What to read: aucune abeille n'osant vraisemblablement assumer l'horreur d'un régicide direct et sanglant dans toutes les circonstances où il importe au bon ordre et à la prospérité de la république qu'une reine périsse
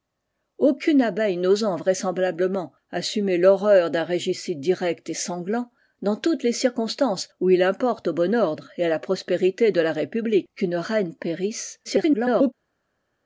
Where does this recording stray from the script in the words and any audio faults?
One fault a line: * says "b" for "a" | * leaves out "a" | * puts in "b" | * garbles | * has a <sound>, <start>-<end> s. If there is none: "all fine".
* garbles